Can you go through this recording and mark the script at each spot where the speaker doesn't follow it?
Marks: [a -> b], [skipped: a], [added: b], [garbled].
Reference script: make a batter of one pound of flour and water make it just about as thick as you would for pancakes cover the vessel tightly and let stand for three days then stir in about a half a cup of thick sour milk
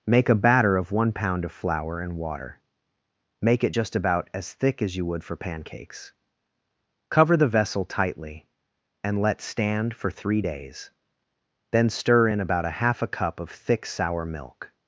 make a batter of one pound of flour and water make it just about as thick as you would for pancakes cover the vessel tightly and let stand for three days then stir in about a half a cup of thick sour milk